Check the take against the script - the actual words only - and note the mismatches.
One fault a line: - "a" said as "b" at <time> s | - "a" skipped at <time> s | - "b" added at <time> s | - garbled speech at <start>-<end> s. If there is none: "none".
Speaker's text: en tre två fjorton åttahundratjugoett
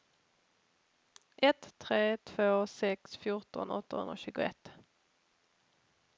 - "en" said as "ett" at 1.4 s
- "sex" added at 2.7 s